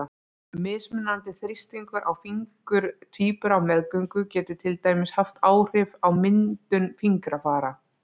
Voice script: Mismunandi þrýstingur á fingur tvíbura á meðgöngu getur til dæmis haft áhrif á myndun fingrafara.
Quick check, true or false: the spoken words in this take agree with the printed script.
true